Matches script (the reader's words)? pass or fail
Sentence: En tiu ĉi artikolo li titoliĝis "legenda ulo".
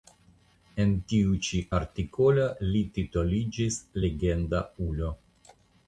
pass